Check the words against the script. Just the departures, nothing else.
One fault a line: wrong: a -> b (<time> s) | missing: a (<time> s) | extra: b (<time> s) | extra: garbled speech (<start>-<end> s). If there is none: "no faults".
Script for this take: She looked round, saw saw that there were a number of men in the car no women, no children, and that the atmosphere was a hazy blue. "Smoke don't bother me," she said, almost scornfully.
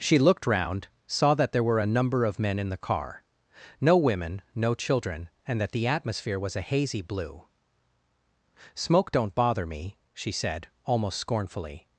missing: saw (1.4 s)